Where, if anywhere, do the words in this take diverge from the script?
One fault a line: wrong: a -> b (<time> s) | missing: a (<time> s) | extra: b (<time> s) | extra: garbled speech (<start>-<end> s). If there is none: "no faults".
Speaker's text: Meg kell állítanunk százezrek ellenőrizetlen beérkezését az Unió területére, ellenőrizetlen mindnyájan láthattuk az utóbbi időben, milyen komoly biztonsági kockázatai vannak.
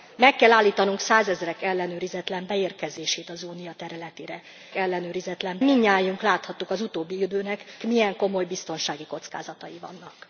no faults